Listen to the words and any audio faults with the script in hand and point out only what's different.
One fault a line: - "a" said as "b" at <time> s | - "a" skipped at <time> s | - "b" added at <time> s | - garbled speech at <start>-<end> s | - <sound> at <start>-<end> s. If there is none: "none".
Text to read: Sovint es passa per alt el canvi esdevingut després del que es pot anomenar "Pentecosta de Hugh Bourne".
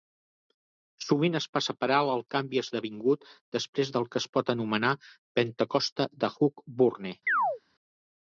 - chirp at 7.3-7.6 s